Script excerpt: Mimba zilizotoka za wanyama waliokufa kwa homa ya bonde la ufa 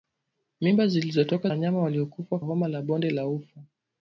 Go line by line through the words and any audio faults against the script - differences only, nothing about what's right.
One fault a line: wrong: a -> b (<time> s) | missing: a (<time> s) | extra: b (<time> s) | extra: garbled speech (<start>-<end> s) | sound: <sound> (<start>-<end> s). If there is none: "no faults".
missing: za (1.5 s)
missing: kwa (2.4 s)